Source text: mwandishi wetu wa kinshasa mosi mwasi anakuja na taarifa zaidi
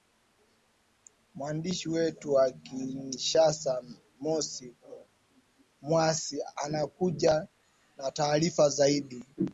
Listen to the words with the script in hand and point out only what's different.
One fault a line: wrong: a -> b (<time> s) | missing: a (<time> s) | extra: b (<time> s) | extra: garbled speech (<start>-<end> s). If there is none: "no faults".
no faults